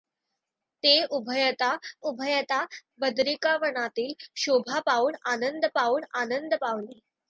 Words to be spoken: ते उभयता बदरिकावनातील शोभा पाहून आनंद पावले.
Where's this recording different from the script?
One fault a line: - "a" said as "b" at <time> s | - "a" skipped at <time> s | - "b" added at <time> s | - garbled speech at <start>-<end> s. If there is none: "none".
- "उभयता" added at 2.0 s
- "पाहून आनंद" added at 5.7 s